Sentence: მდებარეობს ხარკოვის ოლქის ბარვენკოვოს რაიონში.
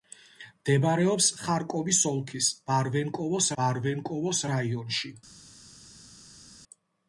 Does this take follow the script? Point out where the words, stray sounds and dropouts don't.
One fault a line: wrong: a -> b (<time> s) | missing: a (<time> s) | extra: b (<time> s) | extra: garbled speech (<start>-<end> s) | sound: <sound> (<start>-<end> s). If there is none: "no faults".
extra: ბარვენკოვოს (3.6 s)